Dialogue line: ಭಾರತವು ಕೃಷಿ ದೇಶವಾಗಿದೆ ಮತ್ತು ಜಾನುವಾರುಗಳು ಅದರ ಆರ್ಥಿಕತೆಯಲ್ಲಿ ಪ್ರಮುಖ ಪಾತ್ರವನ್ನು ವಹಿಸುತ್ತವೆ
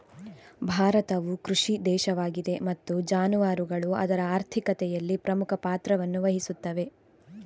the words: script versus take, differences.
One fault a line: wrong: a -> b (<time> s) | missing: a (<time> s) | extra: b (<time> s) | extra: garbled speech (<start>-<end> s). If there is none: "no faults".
no faults